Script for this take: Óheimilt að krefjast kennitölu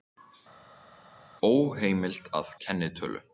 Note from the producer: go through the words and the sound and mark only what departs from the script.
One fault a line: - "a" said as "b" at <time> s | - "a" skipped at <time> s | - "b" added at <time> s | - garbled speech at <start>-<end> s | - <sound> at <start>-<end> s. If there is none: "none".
- "krefjast" skipped at 2.5 s